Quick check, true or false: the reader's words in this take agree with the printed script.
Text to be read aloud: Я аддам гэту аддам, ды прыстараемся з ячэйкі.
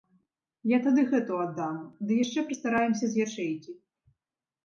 false